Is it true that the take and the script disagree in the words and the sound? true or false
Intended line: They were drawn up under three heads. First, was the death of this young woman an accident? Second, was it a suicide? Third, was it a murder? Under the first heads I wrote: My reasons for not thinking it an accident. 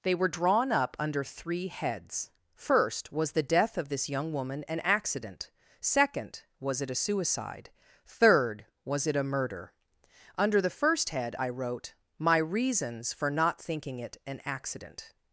true